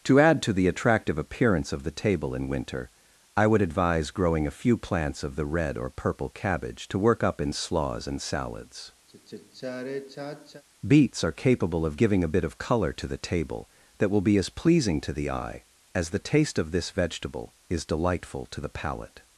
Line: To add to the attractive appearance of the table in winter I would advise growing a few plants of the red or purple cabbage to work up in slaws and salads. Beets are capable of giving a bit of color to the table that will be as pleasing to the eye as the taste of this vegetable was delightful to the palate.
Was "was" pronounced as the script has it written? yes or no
no